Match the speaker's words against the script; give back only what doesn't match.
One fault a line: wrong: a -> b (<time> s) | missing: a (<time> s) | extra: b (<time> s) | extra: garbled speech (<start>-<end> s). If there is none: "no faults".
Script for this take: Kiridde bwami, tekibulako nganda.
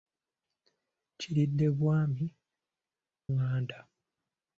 missing: tekibulako (2.2 s)